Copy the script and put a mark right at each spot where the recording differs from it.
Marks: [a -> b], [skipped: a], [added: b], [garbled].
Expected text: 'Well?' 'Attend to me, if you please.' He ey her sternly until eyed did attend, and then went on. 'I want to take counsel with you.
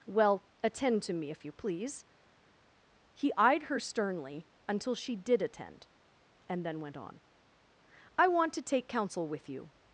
'Well?' 'Attend to me, if you please.' He [ey -> eyed] her sternly until [eyed -> she] did attend, and then went on. 'I want to take counsel with you.